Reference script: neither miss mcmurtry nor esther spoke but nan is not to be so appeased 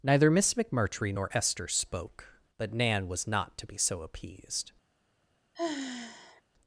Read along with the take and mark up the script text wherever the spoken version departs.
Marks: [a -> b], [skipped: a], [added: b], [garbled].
neither miss mcmurtry nor esther spoke but nan [is -> was] not to be so appeased